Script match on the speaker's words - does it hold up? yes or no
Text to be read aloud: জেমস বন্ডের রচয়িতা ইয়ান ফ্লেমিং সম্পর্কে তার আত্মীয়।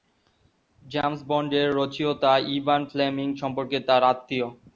yes